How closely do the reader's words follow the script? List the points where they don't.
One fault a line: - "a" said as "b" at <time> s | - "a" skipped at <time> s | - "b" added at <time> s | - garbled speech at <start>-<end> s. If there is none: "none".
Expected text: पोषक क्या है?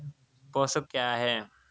none